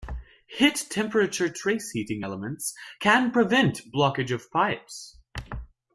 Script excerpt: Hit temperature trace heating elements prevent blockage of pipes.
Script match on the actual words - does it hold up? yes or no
no